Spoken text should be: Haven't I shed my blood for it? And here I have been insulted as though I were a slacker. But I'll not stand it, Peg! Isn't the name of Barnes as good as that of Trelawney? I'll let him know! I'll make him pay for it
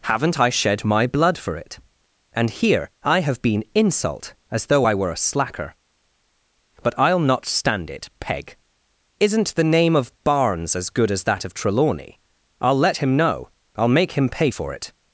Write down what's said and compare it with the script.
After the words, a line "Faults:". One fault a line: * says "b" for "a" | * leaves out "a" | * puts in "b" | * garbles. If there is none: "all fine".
Haven't I shed my blood for it? And here I have been insult as though I were a slacker. But I'll not stand it, Peg! Isn't the name of Barnes as good as that of Trelawney? I'll let him know! I'll make him pay for it
Faults:
* says "insult" for "insulted"